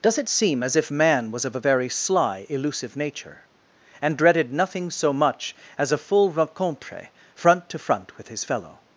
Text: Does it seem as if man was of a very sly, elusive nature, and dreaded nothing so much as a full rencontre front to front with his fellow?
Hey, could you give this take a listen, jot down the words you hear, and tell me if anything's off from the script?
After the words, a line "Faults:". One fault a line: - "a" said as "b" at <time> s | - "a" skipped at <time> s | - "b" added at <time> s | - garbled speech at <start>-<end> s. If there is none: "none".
Does it seem as if man was of a very sly, elusive nature, and dreaded nothing so much as a full rencontre front to front with his fellow?
Faults:
none